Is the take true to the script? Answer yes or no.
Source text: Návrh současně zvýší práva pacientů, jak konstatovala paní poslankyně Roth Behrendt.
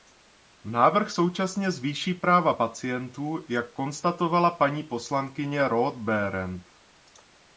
yes